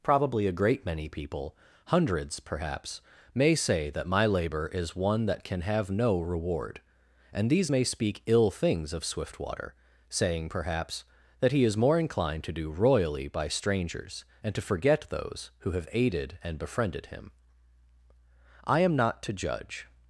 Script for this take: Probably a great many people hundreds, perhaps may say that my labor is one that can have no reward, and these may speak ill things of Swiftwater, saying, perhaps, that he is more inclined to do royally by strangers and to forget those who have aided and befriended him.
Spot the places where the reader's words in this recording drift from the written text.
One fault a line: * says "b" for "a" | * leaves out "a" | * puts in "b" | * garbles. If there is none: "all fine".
* puts in "I am not to judge"